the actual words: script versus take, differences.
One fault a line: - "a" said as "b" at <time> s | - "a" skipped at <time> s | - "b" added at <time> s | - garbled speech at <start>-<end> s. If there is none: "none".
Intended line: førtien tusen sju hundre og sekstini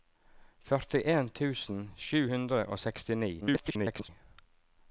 - garbled speech at 3.4-4.1 s